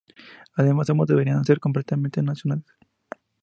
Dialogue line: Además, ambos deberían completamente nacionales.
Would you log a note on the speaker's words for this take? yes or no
yes